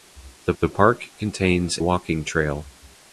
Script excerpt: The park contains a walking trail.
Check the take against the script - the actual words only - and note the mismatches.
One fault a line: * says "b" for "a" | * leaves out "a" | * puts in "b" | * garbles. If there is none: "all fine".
* puts in "the"
* leaves out "a"